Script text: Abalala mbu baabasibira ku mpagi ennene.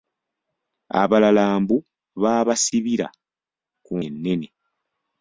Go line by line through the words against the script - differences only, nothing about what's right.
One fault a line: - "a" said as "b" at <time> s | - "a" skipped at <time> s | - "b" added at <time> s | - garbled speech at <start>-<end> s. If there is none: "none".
- "mpagi" skipped at 3.9 s